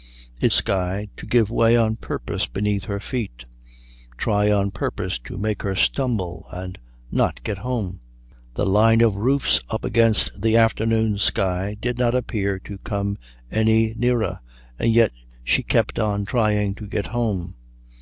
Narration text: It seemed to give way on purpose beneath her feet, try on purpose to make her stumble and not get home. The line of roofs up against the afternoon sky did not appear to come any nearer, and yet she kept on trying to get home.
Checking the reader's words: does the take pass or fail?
fail